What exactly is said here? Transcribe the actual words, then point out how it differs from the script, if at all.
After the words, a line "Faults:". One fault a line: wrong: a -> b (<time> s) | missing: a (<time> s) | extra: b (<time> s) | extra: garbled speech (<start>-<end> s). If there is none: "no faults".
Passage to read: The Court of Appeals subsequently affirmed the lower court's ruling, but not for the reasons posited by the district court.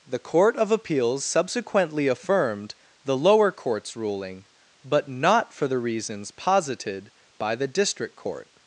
The Court of Appeals subsequently affirmed the lower court's ruling, but not for the reasons posited by the district court.
Faults:
no faults